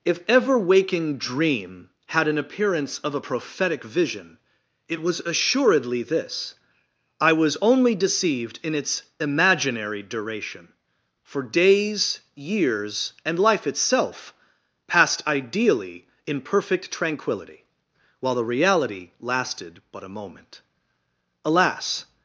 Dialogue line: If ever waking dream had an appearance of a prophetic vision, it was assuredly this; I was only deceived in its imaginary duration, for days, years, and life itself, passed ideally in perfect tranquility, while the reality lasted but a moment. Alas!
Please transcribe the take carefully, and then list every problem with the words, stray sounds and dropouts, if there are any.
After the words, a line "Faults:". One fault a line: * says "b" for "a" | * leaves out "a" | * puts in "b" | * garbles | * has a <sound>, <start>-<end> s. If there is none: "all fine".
If ever waking dream had an appearance of a prophetic vision, it was assuredly this; I was only deceived in its imaginary duration, for days, years, and life itself, passed ideally in perfect tranquility, while the reality lasted but a moment. Alas!
Faults:
all fine